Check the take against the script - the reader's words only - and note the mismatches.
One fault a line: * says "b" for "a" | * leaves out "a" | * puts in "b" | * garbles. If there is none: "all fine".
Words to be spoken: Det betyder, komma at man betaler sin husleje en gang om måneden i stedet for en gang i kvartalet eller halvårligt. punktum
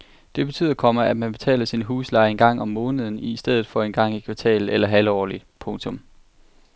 all fine